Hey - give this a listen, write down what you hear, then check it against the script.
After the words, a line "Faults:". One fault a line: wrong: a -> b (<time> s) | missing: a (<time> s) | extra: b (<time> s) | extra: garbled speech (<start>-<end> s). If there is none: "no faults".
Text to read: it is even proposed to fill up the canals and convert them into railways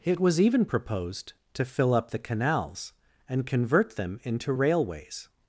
it was even proposed to fill up the canals and convert them into railways
Faults:
wrong: is -> was (0.2 s)